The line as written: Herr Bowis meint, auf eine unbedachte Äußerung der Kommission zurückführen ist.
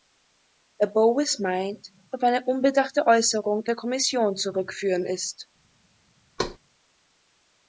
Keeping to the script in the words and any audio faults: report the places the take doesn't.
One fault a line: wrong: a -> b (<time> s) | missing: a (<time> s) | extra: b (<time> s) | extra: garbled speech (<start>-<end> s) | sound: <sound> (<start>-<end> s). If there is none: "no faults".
sound: thud (6.4-6.6 s)